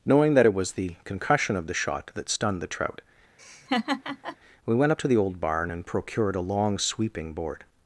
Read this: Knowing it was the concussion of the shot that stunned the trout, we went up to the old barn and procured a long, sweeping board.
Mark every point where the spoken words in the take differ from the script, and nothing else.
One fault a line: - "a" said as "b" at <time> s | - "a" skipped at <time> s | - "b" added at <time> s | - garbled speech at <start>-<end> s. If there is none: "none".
- "that" added at 0.3 s